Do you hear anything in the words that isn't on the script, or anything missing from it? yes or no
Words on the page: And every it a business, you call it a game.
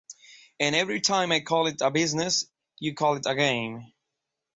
yes